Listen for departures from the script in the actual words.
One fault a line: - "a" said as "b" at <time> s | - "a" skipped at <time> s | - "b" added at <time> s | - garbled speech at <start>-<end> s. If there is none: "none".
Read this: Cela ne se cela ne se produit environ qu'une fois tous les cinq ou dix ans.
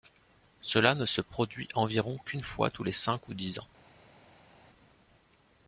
- "cela ne se" skipped at 1.2 s